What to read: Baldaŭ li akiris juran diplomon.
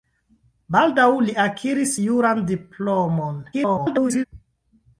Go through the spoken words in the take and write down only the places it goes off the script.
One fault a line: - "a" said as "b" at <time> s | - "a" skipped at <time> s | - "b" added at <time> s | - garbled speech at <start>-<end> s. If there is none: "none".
- garbled speech at 3.5-4.2 s